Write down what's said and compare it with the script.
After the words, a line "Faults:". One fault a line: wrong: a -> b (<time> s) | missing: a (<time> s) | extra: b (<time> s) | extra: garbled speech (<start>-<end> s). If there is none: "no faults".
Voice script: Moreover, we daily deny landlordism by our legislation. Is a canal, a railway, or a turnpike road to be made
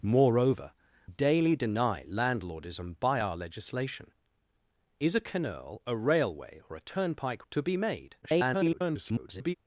Moreover, daily deny landlordism by our legislation. Is a canal, a railway, or a turnpike to be made [garbled]
Faults:
missing: we (0.7 s)
missing: road (7.5 s)
extra: garbled speech (8.2-9.5 s)